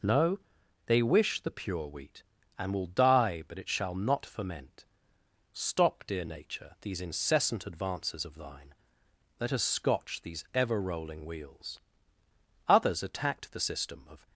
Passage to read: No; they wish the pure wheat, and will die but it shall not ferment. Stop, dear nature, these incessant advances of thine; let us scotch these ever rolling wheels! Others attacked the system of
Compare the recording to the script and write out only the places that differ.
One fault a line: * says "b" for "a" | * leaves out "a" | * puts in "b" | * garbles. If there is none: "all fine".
all fine